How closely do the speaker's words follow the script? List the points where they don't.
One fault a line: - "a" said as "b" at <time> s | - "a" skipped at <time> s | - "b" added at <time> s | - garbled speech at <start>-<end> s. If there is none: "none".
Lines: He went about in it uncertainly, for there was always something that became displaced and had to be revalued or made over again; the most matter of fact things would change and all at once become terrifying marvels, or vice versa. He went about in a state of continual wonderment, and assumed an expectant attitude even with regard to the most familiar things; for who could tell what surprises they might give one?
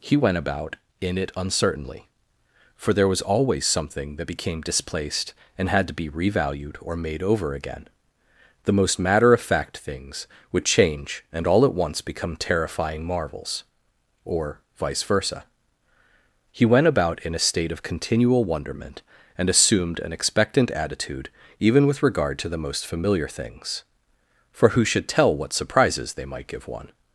- "could" said as "should" at 24.8 s